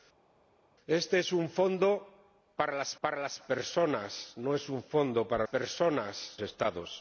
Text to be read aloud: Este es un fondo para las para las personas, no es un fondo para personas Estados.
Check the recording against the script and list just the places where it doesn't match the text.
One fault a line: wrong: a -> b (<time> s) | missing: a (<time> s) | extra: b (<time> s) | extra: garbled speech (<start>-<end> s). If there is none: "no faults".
no faults